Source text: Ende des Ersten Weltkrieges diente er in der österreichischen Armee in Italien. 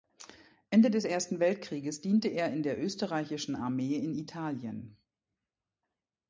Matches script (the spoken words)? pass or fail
pass